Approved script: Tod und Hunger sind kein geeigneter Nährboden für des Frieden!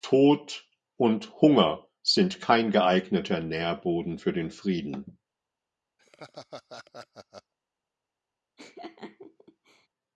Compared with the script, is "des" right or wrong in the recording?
wrong